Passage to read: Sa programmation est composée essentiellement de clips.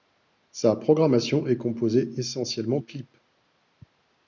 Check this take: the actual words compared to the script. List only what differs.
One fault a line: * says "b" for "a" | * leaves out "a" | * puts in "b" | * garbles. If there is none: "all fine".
* leaves out "de"